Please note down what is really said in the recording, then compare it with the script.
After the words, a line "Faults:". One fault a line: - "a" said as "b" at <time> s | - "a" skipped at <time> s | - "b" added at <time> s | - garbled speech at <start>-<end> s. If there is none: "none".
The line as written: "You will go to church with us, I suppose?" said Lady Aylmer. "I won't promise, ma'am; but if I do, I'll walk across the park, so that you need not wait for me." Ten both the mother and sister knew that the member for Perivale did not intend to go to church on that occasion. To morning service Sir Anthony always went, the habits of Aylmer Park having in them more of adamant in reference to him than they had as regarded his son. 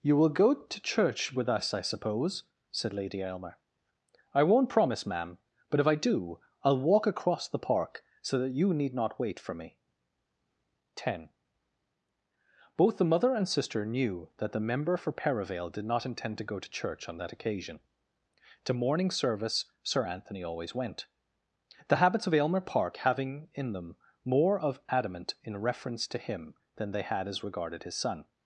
"You will go to church with us, I suppose?" said Lady Aylmer. "I won't promise, ma'am; but if I do, I'll walk across the park, so that you need not wait for me." Ten both the mother and sister knew that the member for Perivale did not intend to go to church on that occasion. To morning service Sir Anthony always went, the habits of Aylmer Park having in them more of adamant in reference to him than they had as regarded his son.
Faults:
none